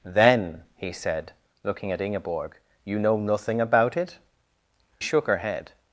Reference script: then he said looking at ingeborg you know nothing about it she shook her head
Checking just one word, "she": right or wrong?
wrong